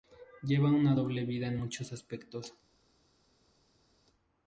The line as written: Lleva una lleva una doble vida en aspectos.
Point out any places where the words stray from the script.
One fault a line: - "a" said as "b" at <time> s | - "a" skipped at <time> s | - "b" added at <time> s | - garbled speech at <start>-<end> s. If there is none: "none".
- "lleva una" skipped at 0.9 s
- "muchos" added at 1.5 s